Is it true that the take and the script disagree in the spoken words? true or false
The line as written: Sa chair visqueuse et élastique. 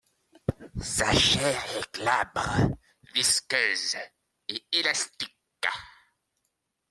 true